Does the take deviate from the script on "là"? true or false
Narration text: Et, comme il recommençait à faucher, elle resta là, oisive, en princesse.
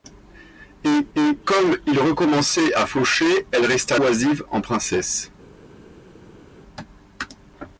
true